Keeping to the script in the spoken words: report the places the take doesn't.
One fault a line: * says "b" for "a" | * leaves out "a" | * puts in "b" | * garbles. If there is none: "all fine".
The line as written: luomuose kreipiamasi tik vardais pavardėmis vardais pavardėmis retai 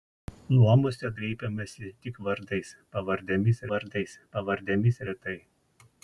all fine